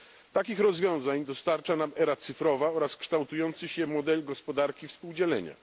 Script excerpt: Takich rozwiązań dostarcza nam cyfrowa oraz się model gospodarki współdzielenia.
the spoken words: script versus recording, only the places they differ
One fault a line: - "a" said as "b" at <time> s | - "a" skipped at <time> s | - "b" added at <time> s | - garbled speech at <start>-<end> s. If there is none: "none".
- "era" added at 1.9 s
- "kształtujący" added at 3.0 s